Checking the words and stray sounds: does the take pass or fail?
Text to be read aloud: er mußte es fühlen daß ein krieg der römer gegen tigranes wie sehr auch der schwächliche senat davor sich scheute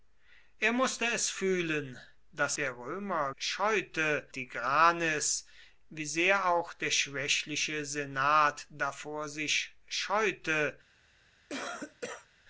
fail